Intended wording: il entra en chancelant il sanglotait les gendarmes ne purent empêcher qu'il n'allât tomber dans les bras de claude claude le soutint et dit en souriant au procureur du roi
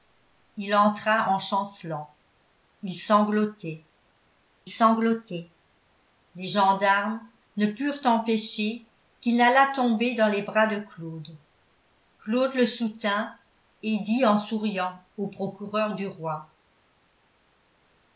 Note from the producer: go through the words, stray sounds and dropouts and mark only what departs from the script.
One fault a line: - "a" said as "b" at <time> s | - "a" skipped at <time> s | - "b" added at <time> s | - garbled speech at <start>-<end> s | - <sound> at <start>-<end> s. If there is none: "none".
- "sanglotait" added at 4.7 s